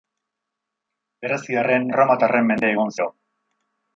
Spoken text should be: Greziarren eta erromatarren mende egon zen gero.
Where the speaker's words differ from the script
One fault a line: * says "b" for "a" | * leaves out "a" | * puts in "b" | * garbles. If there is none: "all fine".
* leaves out "eta"
* leaves out "zen"